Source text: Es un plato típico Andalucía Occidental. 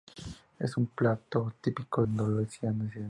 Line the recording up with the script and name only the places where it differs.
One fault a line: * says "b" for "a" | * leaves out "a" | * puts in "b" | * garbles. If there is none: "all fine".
all fine